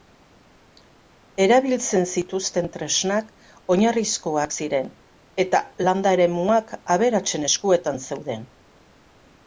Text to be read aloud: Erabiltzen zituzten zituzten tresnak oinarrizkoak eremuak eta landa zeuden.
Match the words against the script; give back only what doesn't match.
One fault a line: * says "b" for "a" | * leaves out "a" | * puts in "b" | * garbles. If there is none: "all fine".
* leaves out "zituzten"
* says "ziren" for "eremuak"
* puts in "eremuak aberatsen eskuetan"